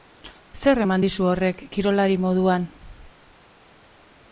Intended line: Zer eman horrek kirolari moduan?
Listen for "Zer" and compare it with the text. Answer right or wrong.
right